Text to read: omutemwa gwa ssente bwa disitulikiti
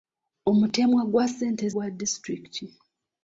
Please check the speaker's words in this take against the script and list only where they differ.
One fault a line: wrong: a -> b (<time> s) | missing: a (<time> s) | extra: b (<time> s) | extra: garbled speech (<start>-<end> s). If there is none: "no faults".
no faults